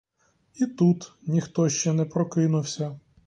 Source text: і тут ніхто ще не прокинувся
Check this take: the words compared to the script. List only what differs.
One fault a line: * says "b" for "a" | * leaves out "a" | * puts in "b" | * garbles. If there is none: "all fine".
all fine